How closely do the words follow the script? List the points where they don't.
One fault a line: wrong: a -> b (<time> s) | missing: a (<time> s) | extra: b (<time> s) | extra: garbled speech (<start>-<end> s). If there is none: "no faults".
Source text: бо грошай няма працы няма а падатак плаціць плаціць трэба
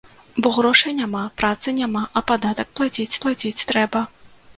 no faults